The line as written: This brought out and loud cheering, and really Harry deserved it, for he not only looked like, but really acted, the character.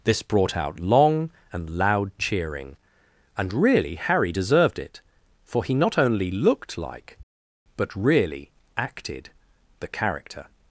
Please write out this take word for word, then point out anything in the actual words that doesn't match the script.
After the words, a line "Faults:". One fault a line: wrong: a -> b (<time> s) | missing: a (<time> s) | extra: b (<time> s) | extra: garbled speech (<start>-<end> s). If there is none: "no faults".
This brought out long and loud cheering, and really Harry deserved it, for he not only looked like, but really acted, the character.
Faults:
extra: long (0.8 s)